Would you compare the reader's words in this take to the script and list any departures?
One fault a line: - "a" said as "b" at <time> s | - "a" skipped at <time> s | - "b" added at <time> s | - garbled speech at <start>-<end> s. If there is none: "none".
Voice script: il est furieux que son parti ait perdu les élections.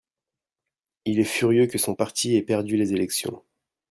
none